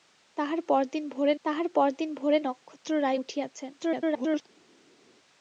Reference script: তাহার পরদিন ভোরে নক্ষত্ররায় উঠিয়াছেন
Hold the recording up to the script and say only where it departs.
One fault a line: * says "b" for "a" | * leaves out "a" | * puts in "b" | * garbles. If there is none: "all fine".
* puts in "তাহার পরদিন ভোরে"
* garbles